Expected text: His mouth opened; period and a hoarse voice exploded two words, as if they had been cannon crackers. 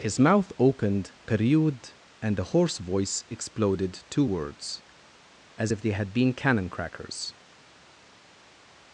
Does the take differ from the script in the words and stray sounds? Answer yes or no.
no